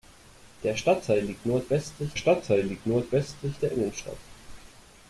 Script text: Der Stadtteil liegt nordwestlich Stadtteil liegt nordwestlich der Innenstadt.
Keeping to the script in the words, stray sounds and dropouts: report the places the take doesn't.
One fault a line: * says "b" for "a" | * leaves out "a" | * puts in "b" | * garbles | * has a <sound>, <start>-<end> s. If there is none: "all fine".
all fine